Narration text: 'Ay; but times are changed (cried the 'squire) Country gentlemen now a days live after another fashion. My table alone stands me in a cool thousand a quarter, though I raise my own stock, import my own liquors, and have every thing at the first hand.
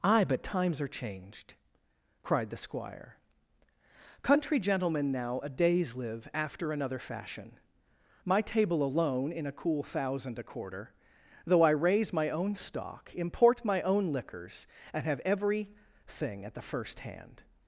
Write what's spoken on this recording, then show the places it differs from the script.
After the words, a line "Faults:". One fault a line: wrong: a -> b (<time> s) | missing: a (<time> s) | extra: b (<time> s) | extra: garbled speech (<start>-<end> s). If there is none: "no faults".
'Ay; but times are changed (cried the 'squire) Country gentlemen now a days live after another fashion. My table alone in a cool thousand a quarter, though I raise my own stock, import my own liquors, and have every thing at the first hand.
Faults:
missing: stands me (9.3 s)